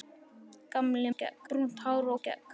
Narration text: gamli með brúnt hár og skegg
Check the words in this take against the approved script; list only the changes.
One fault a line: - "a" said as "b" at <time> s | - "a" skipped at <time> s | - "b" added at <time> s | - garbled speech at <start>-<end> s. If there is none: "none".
- "með" said as "skegg" at 1.1 s
- "og" skipped at 2.1 s